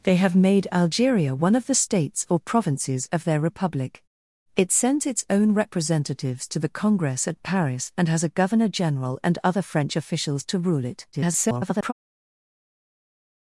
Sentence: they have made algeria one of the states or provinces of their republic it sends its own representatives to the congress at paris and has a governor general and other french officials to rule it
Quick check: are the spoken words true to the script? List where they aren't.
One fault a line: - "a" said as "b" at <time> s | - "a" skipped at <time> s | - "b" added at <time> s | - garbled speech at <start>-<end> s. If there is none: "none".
- garbled speech at 11.1-11.9 s